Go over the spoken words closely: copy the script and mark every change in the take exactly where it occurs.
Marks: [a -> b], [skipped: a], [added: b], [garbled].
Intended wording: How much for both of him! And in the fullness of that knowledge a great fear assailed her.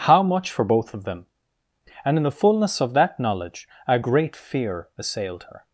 How much for both of [him! -> them] And in the fullness of that knowledge a great fear assailed her.